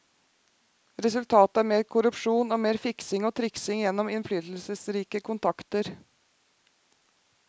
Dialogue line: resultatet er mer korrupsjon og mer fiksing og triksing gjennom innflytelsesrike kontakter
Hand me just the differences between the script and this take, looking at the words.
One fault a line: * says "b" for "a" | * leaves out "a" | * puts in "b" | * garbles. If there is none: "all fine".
all fine